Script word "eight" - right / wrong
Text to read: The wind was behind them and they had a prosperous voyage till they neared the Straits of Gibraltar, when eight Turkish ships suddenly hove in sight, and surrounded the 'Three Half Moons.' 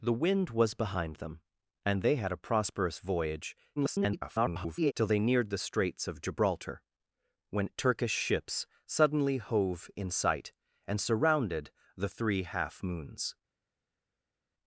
wrong